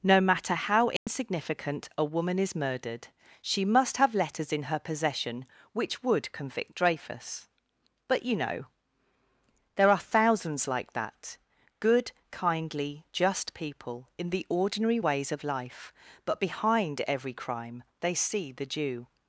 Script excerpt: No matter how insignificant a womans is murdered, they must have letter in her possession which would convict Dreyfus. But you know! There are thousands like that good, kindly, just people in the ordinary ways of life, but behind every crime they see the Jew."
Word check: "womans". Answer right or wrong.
wrong